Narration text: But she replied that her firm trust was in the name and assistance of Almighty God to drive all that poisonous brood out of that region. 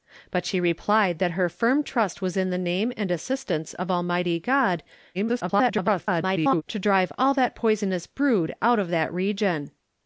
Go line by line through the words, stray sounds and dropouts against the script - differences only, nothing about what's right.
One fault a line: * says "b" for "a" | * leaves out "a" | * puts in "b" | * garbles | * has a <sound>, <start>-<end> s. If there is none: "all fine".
* garbles